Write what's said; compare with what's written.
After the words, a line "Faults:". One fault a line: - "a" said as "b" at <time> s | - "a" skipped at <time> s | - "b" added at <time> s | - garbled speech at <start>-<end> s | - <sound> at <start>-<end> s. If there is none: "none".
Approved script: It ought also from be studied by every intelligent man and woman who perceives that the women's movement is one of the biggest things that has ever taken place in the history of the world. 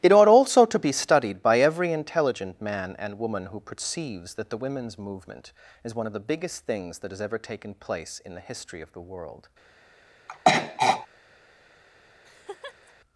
It ought also to be studied by every intelligent man and woman who perceives that the women's movement is one of the biggest things that has ever taken place in the history of the world.
Faults:
- "from" said as "to" at 0.7 s
- throat clearing at 10.3-11.1 s
- laugh at 12.2-12.9 s